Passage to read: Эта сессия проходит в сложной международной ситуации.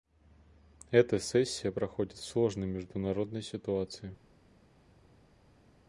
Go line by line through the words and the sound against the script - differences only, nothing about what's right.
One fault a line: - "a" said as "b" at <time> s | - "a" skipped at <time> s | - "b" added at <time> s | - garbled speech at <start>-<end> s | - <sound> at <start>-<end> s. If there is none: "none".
none